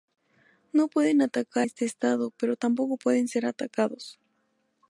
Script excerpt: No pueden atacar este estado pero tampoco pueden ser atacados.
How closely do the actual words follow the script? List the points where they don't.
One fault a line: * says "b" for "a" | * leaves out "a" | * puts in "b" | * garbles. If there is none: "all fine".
all fine